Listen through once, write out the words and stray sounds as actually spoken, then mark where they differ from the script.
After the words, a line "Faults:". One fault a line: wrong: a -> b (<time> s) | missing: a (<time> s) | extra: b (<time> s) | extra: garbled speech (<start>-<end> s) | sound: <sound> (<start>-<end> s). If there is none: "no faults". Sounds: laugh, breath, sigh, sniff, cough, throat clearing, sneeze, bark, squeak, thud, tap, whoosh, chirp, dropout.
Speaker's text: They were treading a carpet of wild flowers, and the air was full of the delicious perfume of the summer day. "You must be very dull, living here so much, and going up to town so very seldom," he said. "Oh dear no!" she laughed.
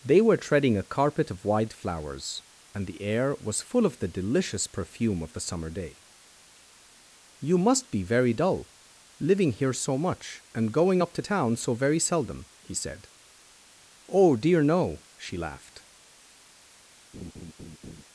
They were treading a carpet of white flowers, and the air was full of the delicious perfume of the summer day. "You must be very dull, living here so much, and going up to town so very seldom," he said. "Oh dear no!" she laughed.
Faults:
wrong: wild -> white (1.4 s)
sound: laugh (17.1-18.0 s)